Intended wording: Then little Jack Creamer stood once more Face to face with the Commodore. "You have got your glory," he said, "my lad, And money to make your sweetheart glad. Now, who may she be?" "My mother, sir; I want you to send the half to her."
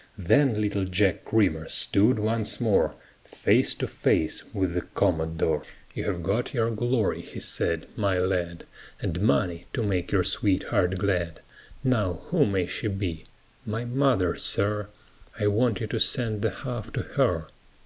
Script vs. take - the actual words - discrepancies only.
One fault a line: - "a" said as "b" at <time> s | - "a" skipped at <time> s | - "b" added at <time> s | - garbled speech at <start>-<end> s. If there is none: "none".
none